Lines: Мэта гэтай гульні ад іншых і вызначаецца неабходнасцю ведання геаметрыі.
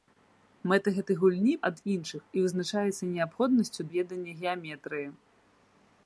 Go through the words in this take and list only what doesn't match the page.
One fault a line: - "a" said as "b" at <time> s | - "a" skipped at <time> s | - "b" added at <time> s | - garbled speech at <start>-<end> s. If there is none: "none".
none